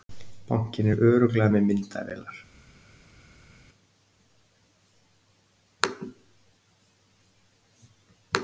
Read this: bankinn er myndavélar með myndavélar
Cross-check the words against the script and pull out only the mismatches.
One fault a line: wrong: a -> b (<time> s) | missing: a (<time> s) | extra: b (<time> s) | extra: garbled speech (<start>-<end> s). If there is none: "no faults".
wrong: myndavélar -> örugglega (1.1 s)